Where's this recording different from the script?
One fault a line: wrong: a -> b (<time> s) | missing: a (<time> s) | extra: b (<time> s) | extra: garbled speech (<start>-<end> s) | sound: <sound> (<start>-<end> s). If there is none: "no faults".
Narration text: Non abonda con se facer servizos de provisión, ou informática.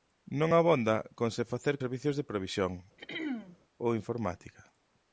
sound: throat clearing (3.0-3.6 s)